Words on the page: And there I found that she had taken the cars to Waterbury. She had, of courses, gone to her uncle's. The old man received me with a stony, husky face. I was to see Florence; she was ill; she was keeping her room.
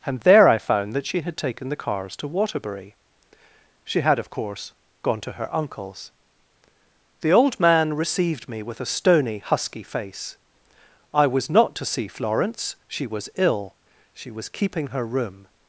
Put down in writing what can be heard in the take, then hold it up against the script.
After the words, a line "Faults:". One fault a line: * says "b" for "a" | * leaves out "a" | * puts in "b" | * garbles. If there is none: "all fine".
And there I found that she had taken the cars to Waterbury. She had, of course, gone to her uncle's. The old man received me with a stony, husky face. I was not to see Florence; she was ill; she was keeping her room.
Faults:
* says "course" for "courses"
* puts in "not"